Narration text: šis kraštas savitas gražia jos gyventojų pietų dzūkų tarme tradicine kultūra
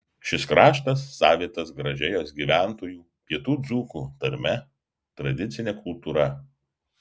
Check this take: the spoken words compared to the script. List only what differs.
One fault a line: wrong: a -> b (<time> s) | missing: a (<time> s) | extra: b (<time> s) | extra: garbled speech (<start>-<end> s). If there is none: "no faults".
no faults